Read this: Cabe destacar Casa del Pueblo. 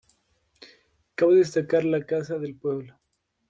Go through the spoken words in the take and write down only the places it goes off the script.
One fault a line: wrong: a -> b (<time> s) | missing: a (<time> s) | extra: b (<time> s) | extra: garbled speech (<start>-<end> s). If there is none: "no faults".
extra: la (1.9 s)